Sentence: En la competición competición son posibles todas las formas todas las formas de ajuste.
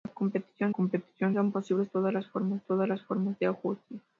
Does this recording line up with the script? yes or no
yes